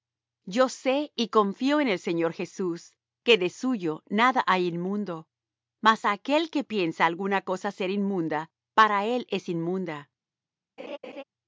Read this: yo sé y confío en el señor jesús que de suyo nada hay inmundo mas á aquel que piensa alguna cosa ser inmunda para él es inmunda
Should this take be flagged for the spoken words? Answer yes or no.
no